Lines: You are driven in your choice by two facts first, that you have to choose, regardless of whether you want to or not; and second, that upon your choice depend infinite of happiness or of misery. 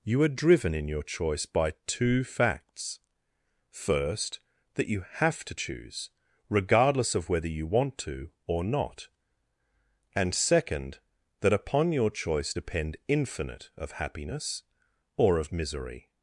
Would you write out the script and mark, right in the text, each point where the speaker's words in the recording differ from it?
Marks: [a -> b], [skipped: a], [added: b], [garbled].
You are driven in your choice by two facts first, that you have to choose, regardless of whether you want to or not; and second, that upon your choice depend infinite of happiness or of misery.